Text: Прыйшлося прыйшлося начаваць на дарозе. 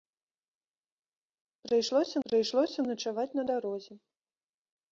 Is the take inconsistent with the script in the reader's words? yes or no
no